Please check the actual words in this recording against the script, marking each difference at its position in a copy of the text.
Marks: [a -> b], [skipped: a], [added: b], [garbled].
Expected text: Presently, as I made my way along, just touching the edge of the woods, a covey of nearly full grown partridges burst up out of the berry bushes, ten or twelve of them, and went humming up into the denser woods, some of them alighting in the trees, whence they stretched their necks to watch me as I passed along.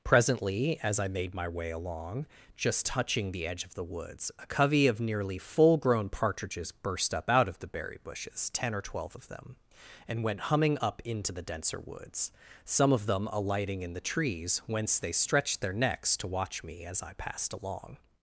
Presently, as I made my way along, just touching the edge of the woods, a covey of nearly full grown partridges burst up out of the berry bushes, ten or twelve of them, and went humming up into the denser woods, some of them alighting in the trees, whence they stretched their necks to watch me as I passed along.